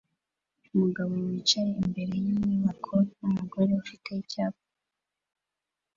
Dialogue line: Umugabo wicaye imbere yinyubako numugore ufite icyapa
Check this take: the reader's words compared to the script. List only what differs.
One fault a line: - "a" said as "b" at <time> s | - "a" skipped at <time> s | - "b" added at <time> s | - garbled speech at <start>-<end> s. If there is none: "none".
none